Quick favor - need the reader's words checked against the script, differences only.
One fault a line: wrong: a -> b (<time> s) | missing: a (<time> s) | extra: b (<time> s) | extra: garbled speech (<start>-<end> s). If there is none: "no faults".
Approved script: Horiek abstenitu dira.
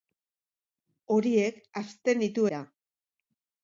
no faults